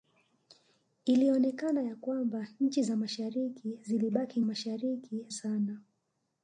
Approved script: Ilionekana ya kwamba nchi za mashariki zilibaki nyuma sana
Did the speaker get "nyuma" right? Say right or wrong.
wrong